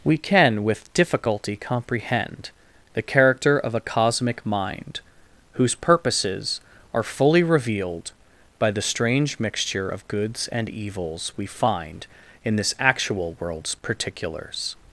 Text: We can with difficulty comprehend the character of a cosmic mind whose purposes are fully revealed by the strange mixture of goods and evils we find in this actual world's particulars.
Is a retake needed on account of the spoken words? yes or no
no